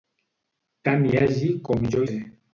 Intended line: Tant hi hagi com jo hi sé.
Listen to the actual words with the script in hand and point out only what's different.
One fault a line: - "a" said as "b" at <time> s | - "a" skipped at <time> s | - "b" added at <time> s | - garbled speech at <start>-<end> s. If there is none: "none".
- "hi" skipped at 2.0 s